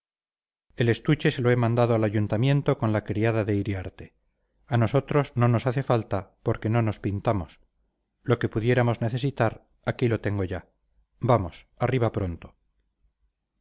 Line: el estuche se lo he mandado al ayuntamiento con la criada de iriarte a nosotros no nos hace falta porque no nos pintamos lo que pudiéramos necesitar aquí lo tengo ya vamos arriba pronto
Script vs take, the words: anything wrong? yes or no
no